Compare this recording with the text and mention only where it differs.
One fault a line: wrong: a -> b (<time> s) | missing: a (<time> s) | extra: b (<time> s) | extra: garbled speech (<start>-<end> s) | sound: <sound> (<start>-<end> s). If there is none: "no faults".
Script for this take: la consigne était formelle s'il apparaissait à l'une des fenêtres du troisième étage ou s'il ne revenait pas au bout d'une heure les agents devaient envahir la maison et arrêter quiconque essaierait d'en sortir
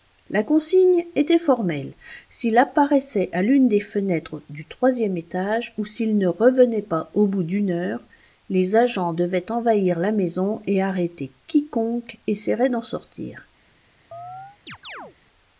sound: chirp (14.1-15.2 s)